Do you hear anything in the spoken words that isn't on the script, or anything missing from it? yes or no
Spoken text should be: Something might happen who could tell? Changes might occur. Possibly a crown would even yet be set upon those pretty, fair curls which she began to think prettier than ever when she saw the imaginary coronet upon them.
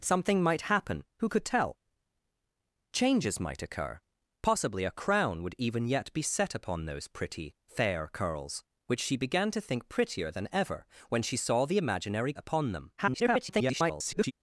yes